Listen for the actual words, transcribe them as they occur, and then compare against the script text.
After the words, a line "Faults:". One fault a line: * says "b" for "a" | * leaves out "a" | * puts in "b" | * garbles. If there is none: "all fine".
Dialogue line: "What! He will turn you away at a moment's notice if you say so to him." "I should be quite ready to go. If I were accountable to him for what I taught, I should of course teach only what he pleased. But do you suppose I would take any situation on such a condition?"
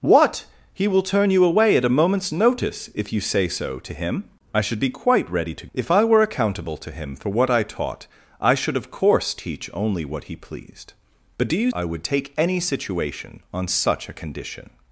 "What! He will turn you away at a moment's notice if you say so to him." "I should be quite ready to. If I were accountable to him for what I taught, I should of course teach only what he pleased. But do you I would take any situation on such a condition?"
Faults:
* leaves out "go"
* leaves out "suppose"